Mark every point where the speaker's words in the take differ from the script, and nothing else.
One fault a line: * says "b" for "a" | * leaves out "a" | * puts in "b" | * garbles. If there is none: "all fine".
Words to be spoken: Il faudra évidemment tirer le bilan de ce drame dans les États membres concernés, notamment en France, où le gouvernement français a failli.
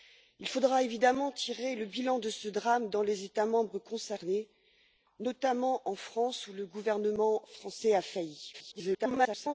* garbles